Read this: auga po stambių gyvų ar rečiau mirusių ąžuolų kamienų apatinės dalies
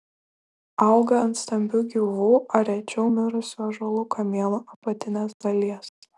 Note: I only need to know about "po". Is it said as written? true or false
false